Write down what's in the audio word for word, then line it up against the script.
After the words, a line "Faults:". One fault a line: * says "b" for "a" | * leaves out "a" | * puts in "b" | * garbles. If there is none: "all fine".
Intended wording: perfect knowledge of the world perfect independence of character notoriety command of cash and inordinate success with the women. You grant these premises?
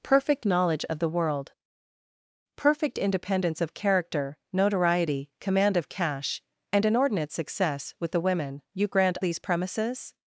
perfect knowledge of the world perfect independence of character notoriety command of cash and inordinate success with the women. You grant these premises?
Faults:
all fine